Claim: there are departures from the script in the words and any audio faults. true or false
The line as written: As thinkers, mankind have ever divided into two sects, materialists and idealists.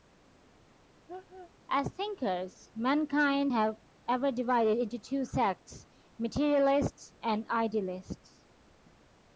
true